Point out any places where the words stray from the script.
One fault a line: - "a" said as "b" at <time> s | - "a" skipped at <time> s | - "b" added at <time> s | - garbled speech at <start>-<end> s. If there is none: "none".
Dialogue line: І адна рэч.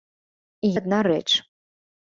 none